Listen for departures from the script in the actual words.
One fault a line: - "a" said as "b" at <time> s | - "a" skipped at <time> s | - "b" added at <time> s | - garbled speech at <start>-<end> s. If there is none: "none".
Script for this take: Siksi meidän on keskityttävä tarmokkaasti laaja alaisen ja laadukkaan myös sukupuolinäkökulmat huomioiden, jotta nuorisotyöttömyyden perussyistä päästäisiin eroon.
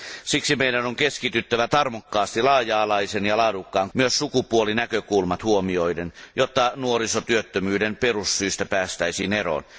none